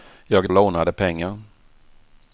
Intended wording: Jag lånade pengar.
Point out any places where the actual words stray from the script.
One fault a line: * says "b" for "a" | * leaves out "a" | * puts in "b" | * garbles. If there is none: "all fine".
all fine